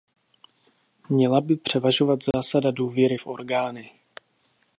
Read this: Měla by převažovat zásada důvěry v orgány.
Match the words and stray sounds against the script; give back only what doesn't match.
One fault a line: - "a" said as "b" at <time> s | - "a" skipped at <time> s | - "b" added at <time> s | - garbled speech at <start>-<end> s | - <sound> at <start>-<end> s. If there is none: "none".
- dropout at 2.3-2.3 s